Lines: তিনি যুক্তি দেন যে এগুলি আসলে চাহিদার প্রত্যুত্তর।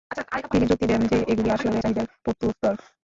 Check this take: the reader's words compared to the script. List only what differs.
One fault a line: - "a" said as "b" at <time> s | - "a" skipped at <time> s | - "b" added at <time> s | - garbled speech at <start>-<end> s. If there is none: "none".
none